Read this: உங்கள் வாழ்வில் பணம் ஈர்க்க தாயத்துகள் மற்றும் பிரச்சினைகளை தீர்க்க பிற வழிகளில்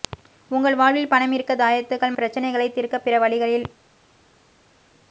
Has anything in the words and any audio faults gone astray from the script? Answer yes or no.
yes